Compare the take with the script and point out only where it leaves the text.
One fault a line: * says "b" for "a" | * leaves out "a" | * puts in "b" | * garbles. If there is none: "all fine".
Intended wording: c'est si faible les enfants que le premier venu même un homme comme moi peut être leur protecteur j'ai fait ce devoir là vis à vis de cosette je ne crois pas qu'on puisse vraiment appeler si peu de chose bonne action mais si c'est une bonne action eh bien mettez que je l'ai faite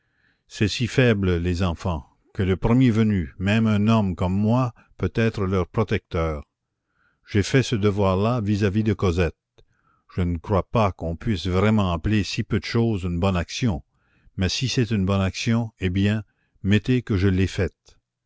* puts in "une"